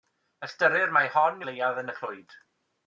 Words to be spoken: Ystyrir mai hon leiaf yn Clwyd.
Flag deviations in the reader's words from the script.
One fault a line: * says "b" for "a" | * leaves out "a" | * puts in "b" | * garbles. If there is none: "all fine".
all fine